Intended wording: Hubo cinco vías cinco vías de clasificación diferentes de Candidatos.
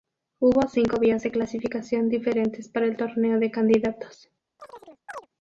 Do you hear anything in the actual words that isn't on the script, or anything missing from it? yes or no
yes